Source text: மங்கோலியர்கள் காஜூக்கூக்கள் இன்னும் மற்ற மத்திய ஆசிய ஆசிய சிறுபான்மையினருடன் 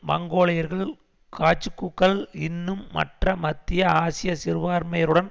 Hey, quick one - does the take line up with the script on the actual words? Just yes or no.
no